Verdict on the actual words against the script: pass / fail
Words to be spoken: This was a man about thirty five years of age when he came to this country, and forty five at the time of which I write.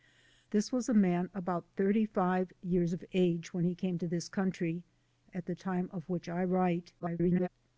fail